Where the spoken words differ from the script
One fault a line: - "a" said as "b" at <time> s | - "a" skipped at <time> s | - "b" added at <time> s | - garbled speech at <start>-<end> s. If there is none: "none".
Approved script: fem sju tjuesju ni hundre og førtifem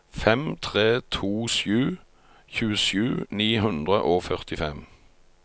- "tre to" added at 0.6 s